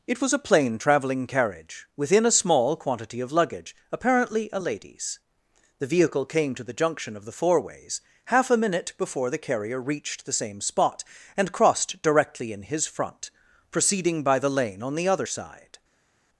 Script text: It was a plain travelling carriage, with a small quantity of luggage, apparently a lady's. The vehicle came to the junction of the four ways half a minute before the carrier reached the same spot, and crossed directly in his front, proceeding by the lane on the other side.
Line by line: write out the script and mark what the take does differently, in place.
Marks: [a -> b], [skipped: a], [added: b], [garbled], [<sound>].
It was a plain travelling carriage, [with -> within] a small quantity of luggage, apparently a lady's. The vehicle came to the junction of the four ways half a minute before the carrier reached the same spot, and crossed directly in his front, proceeding by the lane on the other side.